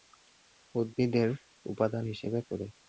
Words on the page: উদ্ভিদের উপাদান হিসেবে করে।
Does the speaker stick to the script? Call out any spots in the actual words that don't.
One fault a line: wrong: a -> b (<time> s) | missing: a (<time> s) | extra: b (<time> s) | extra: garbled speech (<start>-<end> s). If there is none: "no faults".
no faults